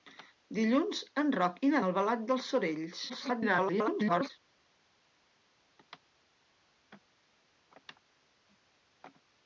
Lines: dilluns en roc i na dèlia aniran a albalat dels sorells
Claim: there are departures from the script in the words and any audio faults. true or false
true